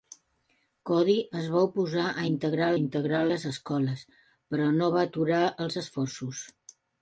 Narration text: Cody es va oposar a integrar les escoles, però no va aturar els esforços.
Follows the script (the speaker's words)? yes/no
no